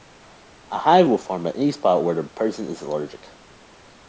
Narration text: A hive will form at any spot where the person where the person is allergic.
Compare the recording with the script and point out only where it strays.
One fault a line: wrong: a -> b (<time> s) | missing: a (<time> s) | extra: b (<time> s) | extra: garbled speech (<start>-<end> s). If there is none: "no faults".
missing: where the person (2.7 s)